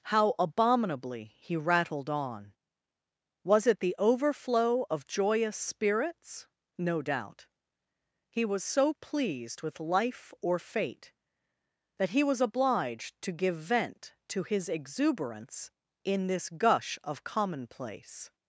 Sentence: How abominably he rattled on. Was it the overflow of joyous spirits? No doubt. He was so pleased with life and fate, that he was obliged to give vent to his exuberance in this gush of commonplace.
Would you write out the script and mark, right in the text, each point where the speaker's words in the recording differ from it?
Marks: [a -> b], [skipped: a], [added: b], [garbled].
How abominably he rattled on. Was it the overflow of joyous spirits? No doubt. He was so pleased with life [and -> or] fate, that he was obliged to give vent to his exuberance in this gush of commonplace.